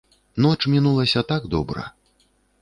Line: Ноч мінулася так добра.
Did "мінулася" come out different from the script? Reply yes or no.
no